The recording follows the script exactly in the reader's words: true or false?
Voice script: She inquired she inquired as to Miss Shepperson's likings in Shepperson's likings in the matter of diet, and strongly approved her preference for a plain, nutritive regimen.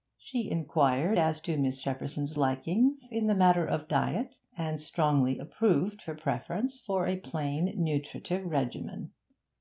false